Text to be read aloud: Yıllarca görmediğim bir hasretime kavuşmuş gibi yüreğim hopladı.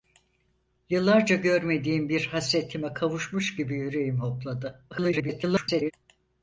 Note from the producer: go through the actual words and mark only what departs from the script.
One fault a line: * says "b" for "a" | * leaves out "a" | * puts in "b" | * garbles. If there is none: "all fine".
* garbles